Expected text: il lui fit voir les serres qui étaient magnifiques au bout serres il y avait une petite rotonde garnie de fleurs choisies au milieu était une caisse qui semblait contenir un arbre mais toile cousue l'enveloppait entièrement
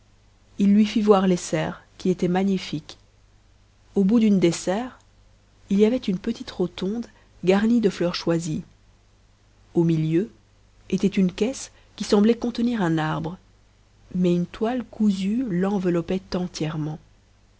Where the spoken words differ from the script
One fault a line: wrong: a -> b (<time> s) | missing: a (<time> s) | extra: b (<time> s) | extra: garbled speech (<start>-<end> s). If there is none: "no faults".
extra: d'une des (4.2 s)
extra: une (14.3 s)